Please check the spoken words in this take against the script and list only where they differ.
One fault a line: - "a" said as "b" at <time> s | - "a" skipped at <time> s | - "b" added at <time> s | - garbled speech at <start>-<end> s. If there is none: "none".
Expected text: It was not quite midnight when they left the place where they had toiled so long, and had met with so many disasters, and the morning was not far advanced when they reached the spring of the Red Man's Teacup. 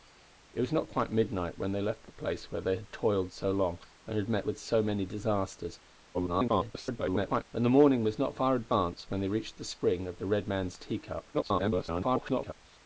- garbled speech at 6.1-7.4 s
- garbled speech at 11.3-12.5 s